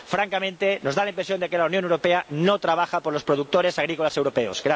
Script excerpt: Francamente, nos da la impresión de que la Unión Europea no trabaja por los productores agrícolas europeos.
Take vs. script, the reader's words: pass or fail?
pass